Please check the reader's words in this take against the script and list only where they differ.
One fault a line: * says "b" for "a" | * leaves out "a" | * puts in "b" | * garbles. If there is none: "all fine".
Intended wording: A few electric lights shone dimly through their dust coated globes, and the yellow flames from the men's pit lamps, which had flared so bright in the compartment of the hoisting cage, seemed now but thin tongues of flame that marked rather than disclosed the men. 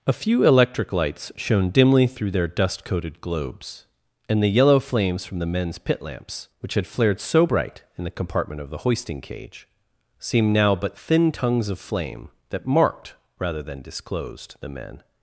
all fine